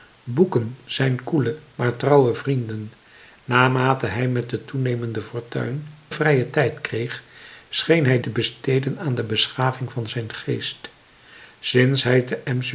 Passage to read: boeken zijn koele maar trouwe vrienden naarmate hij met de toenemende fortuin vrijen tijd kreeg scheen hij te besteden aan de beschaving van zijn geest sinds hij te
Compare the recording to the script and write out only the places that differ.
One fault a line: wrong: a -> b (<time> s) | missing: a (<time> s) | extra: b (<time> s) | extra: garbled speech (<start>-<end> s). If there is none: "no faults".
no faults